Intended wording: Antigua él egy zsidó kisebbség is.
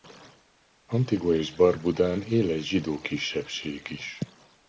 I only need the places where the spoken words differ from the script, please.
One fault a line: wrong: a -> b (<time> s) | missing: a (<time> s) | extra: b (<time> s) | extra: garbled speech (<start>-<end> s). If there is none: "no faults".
extra: és Barbudán (1.4 s)